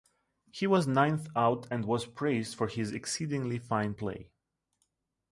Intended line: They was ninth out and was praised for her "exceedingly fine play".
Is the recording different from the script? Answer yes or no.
yes